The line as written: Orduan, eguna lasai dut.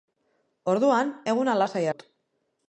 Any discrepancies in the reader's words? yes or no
no